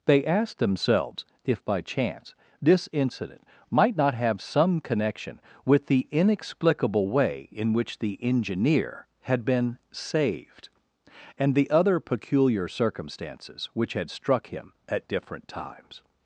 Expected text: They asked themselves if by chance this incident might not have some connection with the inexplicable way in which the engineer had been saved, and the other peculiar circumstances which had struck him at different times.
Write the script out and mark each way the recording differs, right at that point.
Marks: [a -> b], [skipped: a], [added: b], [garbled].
They asked themselves if by chance this incident might not have some connection with the inexplicable way in which the engineer had been saved, and the other peculiar circumstances which had struck him at different times.